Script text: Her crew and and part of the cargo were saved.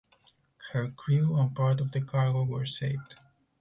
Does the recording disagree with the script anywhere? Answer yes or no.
yes